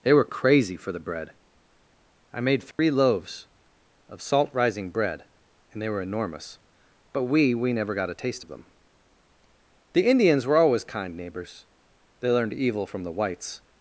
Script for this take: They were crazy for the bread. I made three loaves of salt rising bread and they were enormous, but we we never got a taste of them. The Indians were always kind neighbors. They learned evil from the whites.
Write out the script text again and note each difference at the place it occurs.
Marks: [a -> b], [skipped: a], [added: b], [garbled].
They were crazy for the bread. I made three loaves of salt rising bread and they were enormous, but we we never got a taste of them. The Indians were always kind neighbors. They learned evil from the whites.